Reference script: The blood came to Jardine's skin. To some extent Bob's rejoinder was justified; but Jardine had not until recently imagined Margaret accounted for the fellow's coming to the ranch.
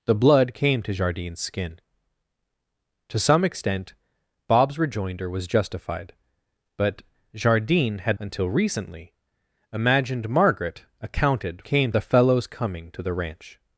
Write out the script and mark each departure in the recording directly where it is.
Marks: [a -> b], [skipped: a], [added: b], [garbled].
The blood came to Jardine's skin. To some extent Bob's rejoinder was justified; but Jardine had [skipped: not] until recently imagined Margaret accounted [for -> came] the fellow's coming to the ranch.